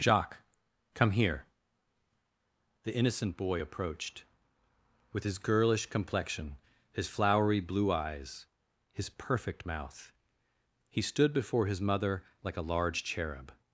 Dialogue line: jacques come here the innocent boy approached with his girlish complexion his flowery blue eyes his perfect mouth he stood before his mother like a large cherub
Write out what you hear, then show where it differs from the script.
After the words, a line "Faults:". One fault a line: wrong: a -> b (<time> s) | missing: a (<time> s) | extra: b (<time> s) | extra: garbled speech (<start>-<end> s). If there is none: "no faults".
jacques come here the innocent boy approached with his girlish complexion his flowery blue eyes his perfect mouth he stood before his mother like a large cherub
Faults:
no faults